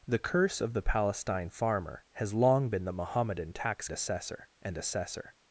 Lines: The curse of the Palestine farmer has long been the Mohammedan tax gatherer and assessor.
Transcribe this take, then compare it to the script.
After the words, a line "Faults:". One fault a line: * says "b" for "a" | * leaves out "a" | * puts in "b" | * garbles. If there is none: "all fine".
The curse of the Palestine farmer has long been the Mohammedan tax assessor and assessor.
Faults:
* says "assessor" for "gatherer"